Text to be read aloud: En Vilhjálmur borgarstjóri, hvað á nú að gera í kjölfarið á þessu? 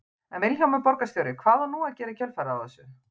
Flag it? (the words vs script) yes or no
no